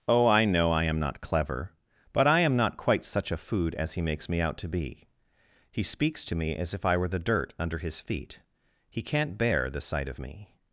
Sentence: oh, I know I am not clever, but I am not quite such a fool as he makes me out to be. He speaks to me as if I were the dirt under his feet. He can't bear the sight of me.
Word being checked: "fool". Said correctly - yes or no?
no